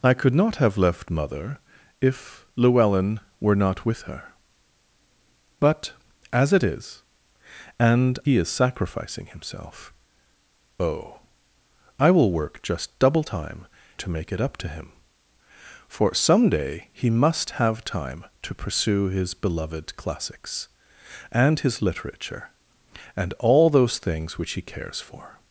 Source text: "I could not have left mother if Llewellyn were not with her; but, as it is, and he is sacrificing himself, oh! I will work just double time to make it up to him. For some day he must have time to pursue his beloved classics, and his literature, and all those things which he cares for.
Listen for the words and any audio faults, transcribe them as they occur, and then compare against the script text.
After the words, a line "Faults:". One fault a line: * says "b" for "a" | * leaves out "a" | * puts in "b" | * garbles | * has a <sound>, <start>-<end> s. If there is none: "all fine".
"I could not have left mother if Llewellyn were not with her; but, as it is, and he is sacrificing himself, oh! I will work just double time to make it up to him. For some day he must have time to pursue his beloved classics, and his literature, and all those things which he cares for.
Faults:
all fine